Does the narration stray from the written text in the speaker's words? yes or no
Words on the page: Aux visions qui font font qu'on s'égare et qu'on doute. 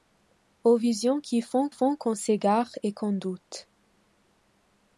no